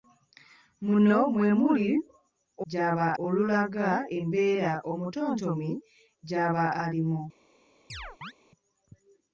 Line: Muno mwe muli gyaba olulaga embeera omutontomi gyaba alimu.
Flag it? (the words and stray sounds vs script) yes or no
yes